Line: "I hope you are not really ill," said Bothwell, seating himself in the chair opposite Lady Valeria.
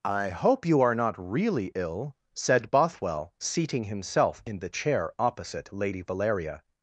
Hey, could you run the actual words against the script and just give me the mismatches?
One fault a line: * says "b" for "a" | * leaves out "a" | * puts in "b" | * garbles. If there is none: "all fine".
all fine